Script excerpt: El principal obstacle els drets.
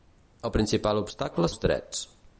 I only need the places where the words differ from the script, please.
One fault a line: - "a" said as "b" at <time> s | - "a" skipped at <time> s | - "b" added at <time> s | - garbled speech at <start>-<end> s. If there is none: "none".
none